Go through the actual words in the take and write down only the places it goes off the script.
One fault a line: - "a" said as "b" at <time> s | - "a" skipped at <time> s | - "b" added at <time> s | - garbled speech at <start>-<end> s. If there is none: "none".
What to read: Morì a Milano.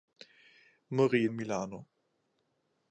none